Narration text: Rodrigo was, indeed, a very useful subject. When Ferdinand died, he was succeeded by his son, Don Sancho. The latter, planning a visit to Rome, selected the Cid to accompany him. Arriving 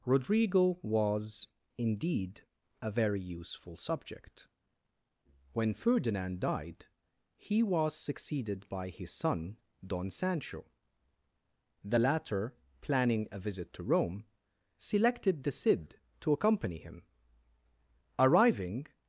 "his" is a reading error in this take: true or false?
false